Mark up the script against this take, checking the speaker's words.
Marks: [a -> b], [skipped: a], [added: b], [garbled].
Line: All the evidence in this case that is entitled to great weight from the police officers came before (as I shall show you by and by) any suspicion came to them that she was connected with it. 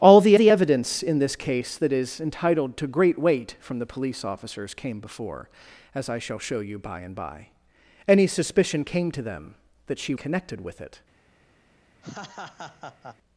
All the [added: the] evidence in this case that is entitled to great weight from the police officers came before (as I shall show you by and by) any suspicion came to them that she [skipped: was] connected with it.